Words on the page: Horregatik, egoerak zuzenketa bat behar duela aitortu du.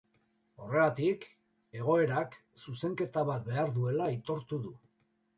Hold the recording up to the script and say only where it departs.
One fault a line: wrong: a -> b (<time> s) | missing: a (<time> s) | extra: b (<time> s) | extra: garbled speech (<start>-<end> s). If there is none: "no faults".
no faults